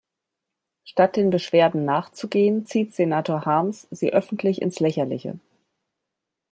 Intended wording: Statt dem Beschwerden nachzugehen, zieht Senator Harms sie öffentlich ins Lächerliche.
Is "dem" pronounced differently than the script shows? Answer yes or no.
yes